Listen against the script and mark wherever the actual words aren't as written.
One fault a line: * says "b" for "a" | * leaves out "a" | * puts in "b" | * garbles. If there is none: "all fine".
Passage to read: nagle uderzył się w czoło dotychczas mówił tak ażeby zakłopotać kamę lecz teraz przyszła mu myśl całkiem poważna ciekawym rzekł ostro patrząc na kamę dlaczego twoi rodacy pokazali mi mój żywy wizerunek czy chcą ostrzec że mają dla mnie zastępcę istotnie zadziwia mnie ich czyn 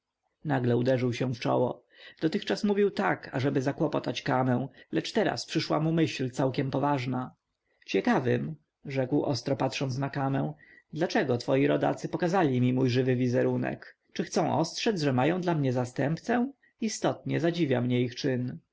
all fine